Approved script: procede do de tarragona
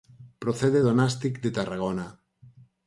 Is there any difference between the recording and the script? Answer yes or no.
yes